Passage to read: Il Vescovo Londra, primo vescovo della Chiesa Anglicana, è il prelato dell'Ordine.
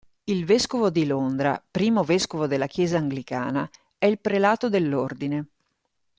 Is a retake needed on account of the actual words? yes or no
yes